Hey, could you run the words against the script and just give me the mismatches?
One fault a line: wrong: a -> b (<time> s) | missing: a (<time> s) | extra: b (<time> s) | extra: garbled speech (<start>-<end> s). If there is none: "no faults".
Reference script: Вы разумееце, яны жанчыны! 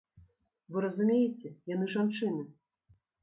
no faults